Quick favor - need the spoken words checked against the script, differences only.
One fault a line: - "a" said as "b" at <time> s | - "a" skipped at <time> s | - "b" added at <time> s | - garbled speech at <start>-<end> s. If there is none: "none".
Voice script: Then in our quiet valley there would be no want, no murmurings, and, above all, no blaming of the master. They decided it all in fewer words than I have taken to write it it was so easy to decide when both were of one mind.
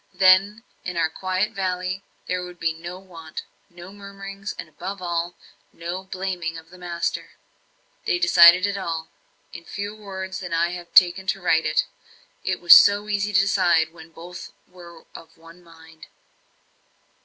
none